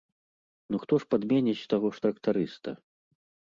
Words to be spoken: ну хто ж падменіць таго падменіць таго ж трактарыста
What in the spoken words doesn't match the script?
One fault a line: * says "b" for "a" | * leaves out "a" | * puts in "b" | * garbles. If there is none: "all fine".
* leaves out "падменіць таго"